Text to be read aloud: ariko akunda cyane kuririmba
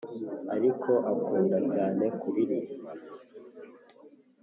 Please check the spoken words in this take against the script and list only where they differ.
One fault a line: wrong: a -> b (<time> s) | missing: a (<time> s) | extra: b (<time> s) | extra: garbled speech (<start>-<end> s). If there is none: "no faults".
no faults